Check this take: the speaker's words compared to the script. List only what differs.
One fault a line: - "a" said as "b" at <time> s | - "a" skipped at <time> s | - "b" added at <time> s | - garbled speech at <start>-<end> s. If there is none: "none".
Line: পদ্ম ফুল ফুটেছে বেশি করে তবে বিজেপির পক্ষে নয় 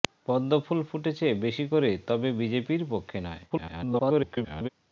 - garbled speech at 3.5-4.7 s